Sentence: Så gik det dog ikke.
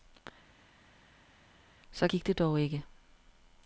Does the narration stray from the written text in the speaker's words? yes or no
no